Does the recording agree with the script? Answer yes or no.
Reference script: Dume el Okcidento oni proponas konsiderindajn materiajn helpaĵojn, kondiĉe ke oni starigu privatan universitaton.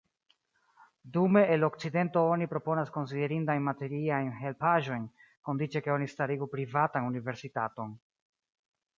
yes